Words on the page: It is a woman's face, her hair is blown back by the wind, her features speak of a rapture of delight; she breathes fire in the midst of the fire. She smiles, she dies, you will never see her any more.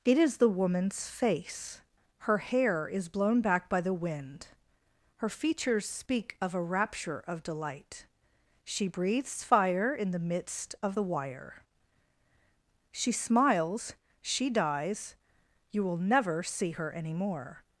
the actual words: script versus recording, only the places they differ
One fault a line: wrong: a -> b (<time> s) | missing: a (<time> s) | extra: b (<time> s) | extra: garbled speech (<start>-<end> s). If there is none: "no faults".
wrong: a -> the (0.4 s)
wrong: fire -> wire (11.0 s)